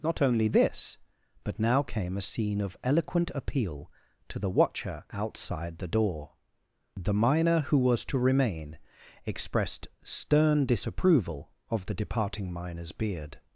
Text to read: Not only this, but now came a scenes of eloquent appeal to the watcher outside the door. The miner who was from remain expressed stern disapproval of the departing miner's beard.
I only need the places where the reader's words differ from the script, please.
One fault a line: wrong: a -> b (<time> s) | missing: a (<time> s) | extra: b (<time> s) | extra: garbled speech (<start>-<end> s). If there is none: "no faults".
wrong: scenes -> scene (2.2 s)
wrong: from -> to (8.1 s)